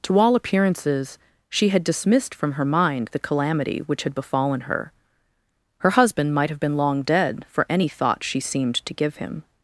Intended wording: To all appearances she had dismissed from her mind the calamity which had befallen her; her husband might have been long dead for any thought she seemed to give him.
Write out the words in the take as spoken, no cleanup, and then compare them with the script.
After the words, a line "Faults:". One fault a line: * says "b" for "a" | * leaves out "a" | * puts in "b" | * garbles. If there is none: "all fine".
To all appearances she had dismissed from her mind the calamity which had befallen her; her husband might have been long dead for any thought she seemed to give him.
Faults:
all fine